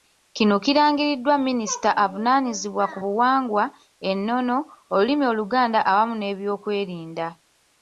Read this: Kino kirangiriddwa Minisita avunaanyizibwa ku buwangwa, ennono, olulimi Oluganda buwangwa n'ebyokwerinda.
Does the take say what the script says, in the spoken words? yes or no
no